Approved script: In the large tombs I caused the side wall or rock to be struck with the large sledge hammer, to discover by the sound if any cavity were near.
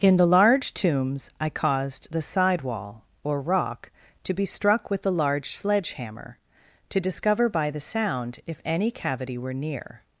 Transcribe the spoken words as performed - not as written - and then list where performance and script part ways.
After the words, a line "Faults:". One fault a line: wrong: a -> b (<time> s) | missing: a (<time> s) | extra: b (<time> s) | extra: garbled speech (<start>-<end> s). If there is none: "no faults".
In the large tombs I caused the side wall or rock to be struck with the large sledge hammer, to discover by the sound if any cavity were near.
Faults:
no faults